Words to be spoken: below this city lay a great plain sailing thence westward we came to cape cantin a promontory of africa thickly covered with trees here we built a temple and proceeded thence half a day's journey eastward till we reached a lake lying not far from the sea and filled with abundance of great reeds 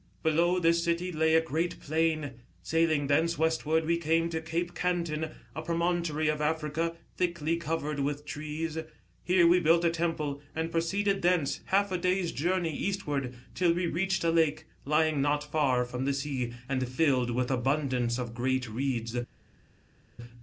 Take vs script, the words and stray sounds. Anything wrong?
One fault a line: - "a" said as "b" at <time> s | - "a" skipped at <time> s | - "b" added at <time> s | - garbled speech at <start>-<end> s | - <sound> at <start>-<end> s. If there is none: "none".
none